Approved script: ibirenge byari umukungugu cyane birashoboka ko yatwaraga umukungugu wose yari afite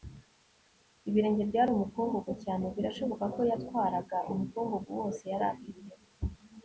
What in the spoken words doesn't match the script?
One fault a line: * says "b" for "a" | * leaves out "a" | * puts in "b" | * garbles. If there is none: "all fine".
all fine